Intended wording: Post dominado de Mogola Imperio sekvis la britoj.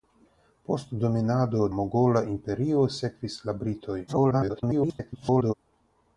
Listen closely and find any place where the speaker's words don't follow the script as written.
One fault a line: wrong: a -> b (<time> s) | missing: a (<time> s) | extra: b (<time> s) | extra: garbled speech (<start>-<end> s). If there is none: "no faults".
missing: de (1.7 s)
extra: garbled speech (4.1-5.5 s)